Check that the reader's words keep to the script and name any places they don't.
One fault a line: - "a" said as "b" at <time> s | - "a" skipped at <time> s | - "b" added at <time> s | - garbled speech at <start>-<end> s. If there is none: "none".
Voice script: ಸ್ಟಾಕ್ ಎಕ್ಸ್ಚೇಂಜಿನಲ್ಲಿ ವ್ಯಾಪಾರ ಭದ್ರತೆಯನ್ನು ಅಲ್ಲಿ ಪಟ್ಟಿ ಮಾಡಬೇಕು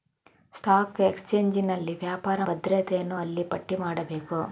none